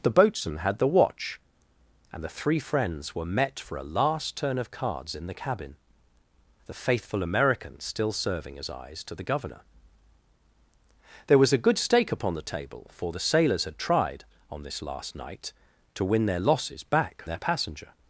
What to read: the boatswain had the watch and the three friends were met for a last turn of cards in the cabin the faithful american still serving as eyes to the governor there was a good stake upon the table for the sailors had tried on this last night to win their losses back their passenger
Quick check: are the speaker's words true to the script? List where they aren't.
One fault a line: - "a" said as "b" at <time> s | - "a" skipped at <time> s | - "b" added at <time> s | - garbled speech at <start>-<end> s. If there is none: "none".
none